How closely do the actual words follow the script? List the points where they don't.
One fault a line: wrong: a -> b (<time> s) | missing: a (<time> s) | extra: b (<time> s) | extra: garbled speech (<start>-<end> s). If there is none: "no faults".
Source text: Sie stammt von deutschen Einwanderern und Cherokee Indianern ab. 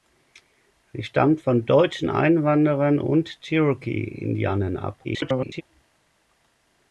extra: garbled speech (5.0-5.6 s)